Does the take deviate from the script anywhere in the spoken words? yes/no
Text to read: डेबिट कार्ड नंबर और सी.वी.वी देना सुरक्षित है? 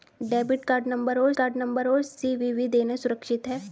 yes